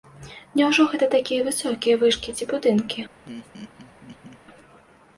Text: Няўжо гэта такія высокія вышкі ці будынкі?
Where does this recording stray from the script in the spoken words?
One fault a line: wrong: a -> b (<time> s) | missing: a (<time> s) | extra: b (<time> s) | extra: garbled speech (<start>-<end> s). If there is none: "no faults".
no faults